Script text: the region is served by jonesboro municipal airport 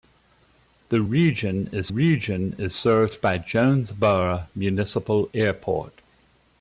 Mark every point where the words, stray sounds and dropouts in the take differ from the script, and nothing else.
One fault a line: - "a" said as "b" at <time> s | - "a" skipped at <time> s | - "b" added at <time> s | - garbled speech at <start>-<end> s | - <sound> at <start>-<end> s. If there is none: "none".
- "region is" added at 1.9 s